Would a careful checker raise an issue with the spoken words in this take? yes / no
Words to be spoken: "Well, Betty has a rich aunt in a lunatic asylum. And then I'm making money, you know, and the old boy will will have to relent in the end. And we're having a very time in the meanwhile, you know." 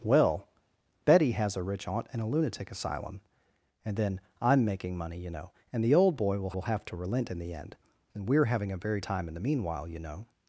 no